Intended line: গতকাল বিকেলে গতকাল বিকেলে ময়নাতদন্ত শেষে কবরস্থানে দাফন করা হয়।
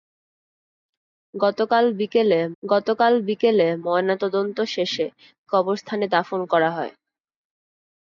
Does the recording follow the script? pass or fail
pass